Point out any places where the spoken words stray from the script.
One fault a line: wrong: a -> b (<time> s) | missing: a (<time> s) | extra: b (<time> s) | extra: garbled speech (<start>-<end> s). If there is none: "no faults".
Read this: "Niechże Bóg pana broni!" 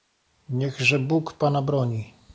no faults